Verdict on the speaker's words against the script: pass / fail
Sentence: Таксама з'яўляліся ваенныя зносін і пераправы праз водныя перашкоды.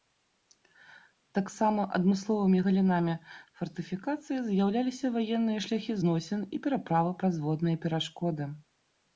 fail